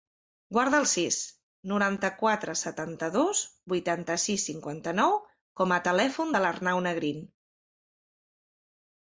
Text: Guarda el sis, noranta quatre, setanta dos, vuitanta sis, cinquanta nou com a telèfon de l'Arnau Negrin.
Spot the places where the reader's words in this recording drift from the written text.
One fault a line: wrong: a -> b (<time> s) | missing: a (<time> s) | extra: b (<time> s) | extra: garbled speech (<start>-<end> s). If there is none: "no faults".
no faults